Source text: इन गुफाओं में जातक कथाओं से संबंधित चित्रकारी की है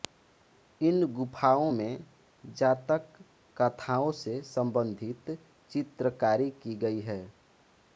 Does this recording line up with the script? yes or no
no